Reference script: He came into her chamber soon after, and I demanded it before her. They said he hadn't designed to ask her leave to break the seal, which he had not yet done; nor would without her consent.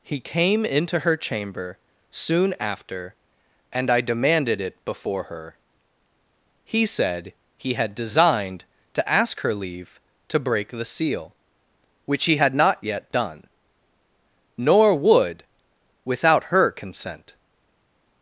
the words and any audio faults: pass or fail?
fail